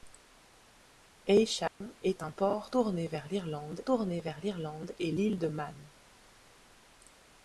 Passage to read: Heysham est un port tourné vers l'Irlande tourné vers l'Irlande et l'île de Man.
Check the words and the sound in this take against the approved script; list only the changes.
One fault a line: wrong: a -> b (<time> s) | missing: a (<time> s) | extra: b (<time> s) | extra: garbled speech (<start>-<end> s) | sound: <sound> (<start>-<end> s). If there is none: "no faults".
sound: dropout (1.7-1.8 s)